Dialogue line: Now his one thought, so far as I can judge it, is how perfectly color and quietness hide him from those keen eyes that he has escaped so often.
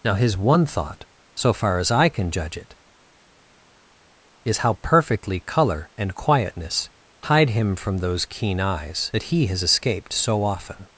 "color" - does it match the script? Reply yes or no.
yes